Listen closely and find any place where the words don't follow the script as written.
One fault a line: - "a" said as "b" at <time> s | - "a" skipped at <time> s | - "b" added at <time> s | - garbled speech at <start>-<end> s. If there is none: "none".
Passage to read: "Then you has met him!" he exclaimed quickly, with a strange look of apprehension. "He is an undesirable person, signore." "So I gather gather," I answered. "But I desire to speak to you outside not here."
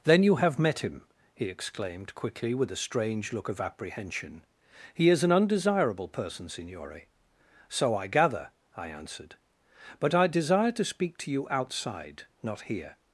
- "has" said as "have" at 0.4 s
- "gather" skipped at 8.5 s